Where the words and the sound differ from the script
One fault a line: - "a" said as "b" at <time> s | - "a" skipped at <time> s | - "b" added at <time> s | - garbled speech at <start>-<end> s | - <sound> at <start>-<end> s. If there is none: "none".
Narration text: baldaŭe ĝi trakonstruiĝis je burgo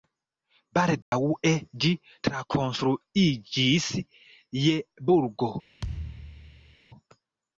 - dropout at 1.0-1.1 s
- thud at 5.8-6.8 s